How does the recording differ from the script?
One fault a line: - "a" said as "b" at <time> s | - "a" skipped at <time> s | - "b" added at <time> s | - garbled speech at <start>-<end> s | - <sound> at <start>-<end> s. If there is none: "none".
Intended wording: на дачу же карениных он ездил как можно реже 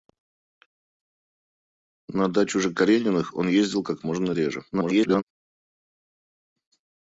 - garbled speech at 4.7-5.2 s